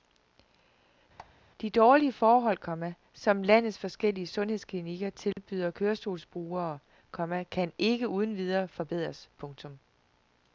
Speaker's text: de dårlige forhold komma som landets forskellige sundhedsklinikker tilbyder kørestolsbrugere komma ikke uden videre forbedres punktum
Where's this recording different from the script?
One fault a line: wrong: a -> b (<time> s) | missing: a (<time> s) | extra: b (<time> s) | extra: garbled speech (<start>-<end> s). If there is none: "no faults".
extra: kan (7.4 s)